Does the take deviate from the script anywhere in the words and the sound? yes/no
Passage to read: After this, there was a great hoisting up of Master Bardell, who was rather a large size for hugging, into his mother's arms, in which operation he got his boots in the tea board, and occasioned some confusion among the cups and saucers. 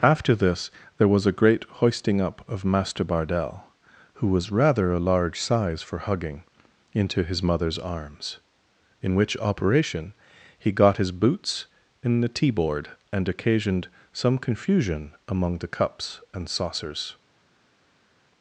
no